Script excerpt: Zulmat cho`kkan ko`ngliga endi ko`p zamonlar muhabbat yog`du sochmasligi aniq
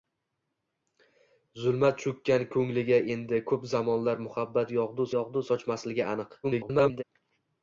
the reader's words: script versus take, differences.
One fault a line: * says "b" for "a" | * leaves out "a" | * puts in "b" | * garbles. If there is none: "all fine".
* puts in "yog`du"
* garbles